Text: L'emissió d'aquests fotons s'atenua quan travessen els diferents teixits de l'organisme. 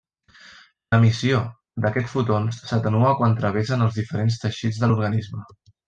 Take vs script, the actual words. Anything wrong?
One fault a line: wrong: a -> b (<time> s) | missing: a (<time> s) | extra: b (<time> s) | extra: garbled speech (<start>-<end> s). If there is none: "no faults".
no faults